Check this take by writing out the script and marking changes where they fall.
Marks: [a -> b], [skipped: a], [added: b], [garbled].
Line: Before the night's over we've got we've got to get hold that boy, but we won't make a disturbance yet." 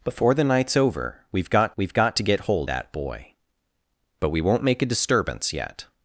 Before the night's over we've got we've got to get hold that boy, but we won't make a disturbance yet."